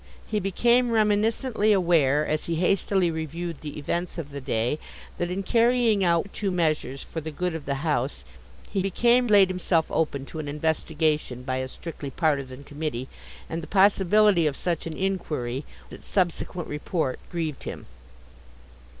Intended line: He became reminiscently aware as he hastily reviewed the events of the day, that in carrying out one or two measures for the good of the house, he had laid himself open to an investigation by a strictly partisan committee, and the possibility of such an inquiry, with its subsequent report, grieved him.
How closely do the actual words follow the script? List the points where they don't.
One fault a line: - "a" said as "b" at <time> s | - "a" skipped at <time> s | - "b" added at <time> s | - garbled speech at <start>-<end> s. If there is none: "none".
- "one" skipped at 6.2 s
- "had" said as "became" at 8.8 s
- "with" skipped at 15.6 s